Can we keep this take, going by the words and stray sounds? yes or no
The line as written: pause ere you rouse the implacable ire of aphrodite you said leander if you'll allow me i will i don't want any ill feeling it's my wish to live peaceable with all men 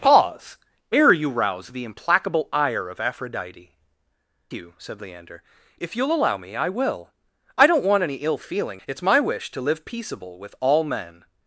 yes